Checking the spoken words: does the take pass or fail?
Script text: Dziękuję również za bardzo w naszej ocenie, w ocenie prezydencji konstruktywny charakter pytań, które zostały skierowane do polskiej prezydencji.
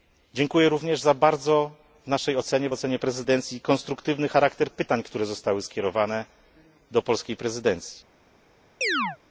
pass